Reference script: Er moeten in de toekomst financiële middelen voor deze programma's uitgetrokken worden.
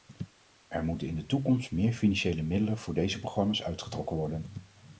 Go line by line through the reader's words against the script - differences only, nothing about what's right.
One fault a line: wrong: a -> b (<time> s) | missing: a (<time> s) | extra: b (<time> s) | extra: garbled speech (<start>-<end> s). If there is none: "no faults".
extra: meer (1.7 s)